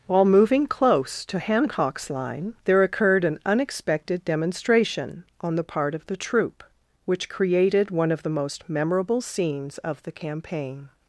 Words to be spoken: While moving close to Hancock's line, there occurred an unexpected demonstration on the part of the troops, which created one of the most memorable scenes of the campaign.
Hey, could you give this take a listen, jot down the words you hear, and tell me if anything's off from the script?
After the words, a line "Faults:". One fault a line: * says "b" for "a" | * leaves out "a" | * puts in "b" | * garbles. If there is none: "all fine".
While moving close to Hancock's line, there occurred an unexpected demonstration on the part of the troop, which created one of the most memorable scenes of the campaign.
Faults:
* says "troop" for "troops"